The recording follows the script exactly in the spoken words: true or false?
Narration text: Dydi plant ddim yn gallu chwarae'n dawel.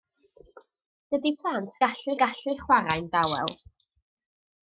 false